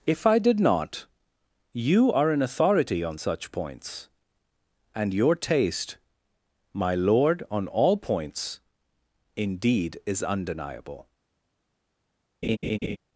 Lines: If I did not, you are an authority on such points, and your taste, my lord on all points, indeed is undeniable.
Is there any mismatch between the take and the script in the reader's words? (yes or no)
no